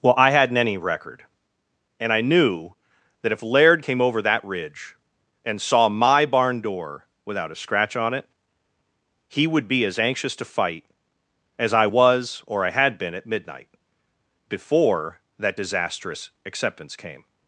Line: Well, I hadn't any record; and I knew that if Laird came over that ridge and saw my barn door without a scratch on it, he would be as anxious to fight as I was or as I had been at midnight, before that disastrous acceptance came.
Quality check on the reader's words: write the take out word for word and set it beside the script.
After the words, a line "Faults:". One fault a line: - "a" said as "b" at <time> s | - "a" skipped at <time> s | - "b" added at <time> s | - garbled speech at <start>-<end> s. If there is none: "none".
Well, I hadn't any record; and I knew that if Laird came over that ridge and saw my barn door without a scratch on it, he would be as anxious to fight as I was or I had been at midnight, before that disastrous acceptance came.
Faults:
- "as" skipped at 12.6 s